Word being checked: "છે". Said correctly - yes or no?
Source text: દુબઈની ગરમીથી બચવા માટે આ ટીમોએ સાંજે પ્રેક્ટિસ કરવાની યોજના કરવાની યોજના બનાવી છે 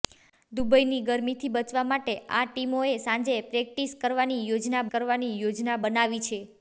yes